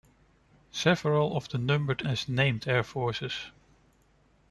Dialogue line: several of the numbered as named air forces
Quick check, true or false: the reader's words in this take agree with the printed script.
true